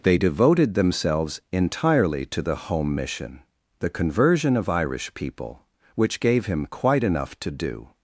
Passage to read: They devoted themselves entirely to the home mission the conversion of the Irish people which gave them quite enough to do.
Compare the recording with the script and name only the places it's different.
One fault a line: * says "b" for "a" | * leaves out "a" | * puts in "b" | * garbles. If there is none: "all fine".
* leaves out "the"
* says "him" for "them"